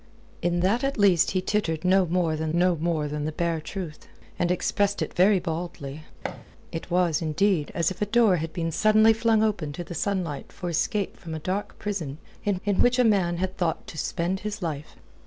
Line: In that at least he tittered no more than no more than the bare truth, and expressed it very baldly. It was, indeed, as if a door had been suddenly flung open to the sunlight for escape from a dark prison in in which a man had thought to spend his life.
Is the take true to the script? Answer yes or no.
yes